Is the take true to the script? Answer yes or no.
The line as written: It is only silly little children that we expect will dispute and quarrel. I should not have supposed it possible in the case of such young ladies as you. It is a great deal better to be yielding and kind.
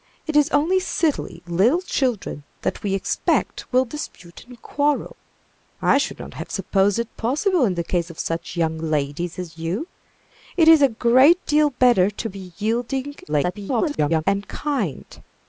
no